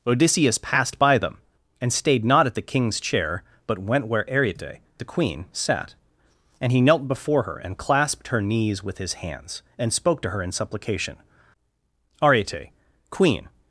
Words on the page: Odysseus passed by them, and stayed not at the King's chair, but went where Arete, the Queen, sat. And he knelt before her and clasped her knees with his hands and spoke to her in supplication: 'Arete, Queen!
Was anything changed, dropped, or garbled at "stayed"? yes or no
no